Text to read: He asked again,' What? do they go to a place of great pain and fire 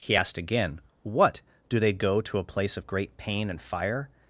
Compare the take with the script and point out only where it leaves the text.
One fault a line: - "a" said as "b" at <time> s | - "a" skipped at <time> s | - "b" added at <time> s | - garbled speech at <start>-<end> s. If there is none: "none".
none